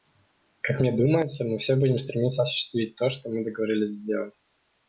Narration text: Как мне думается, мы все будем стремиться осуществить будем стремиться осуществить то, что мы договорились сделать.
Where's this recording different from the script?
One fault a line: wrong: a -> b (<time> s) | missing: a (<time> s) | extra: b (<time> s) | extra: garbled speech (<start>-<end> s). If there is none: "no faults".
missing: будем стремиться осуществить (3.0 s)